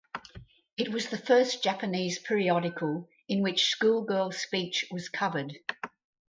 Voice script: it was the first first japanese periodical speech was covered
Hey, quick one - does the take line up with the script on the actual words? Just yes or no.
no